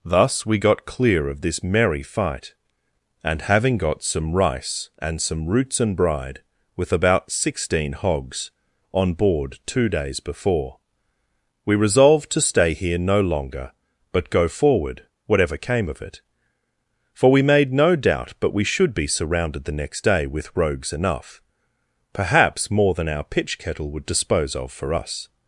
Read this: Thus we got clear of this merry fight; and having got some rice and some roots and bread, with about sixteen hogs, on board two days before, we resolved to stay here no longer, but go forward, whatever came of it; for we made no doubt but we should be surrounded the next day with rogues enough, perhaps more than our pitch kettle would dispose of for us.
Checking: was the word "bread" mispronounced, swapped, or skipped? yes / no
yes